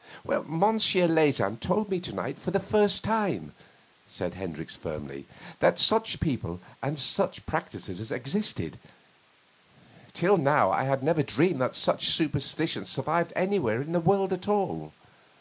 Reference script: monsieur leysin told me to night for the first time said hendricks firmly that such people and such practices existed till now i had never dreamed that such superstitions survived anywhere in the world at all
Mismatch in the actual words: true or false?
false